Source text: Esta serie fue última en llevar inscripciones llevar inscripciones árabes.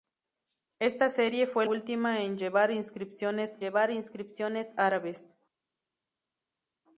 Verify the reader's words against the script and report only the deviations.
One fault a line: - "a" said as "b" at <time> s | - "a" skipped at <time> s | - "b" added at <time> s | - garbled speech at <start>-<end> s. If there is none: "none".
none